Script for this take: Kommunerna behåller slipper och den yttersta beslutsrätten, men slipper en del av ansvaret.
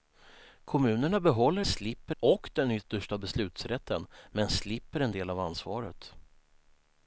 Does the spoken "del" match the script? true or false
true